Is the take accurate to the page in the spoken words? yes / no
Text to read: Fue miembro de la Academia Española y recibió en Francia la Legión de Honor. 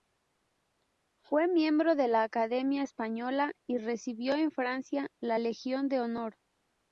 yes